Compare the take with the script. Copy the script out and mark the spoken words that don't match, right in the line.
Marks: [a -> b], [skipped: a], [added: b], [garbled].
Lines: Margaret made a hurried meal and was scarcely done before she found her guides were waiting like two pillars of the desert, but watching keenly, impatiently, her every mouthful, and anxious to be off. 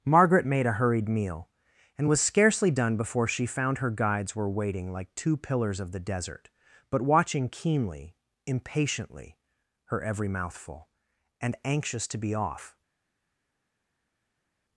Margaret made a hurried meal and was scarcely done before she found her guides were waiting like two pillars of the desert, but watching keenly, impatiently, her every mouthful, and anxious to be off.